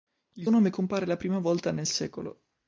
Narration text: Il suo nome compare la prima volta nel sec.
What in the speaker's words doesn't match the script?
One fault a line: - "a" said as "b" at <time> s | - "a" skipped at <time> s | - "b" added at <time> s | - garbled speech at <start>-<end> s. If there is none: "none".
- "suo" skipped at 0.5 s